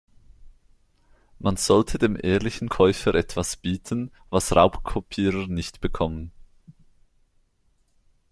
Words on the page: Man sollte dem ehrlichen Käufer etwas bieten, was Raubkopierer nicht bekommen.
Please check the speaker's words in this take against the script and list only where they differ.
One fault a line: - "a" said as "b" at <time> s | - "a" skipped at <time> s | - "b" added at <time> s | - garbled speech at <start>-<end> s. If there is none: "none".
none